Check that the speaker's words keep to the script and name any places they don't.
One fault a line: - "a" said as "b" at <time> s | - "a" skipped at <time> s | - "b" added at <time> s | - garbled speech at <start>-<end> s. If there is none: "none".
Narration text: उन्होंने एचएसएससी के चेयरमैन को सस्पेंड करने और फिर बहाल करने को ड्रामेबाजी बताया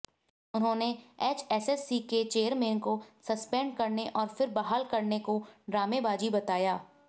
none